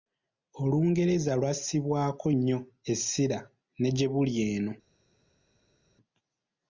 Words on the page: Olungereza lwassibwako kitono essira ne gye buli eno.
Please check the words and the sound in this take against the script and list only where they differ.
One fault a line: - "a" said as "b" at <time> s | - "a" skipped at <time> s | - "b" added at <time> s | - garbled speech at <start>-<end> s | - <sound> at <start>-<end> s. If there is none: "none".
- "kitono" said as "nnyo" at 2.3 s